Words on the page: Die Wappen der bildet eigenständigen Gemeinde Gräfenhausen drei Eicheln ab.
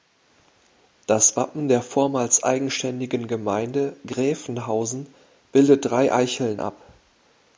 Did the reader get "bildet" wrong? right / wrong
wrong